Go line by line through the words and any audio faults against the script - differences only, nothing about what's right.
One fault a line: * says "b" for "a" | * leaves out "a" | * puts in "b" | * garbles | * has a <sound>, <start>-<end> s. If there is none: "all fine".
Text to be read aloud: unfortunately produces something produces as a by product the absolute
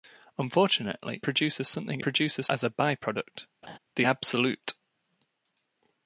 * has a laugh, 3.6-3.8 s